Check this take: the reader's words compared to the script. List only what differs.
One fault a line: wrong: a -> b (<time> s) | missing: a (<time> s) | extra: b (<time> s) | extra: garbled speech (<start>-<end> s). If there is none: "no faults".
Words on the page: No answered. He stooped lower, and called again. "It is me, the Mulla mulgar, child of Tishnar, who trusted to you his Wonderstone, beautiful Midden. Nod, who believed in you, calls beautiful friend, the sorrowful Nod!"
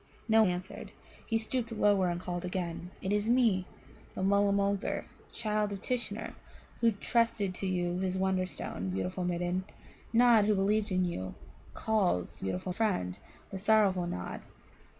no faults